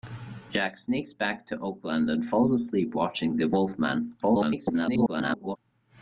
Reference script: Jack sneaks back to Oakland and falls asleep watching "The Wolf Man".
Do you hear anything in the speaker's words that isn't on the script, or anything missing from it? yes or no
yes